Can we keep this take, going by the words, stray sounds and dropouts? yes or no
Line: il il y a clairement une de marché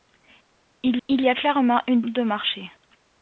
yes